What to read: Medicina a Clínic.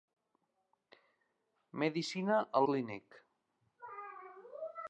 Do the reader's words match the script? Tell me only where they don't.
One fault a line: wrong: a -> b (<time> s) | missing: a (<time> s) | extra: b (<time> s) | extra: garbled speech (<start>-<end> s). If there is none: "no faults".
no faults